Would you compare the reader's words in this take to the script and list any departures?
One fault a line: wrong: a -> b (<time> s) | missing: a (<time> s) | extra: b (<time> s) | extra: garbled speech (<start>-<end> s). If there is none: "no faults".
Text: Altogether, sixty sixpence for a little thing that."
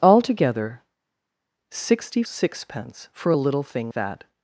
no faults